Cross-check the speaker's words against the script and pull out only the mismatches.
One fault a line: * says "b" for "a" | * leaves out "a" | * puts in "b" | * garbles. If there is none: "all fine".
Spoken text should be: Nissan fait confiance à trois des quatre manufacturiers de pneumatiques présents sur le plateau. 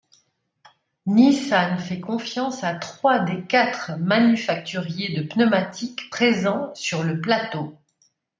all fine